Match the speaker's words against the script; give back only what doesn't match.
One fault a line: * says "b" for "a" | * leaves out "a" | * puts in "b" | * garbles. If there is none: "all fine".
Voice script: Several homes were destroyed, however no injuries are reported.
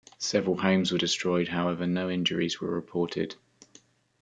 * says "were" for "are"